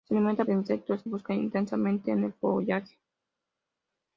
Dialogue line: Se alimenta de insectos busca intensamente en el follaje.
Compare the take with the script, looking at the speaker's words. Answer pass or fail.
pass